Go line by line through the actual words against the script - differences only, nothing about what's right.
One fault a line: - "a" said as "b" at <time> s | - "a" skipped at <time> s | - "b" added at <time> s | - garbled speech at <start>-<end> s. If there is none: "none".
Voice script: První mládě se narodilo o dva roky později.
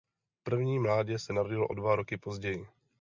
none